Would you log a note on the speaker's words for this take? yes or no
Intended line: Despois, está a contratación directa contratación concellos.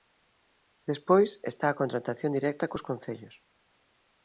yes